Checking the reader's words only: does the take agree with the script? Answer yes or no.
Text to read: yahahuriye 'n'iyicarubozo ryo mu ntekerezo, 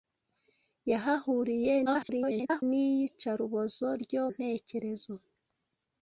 no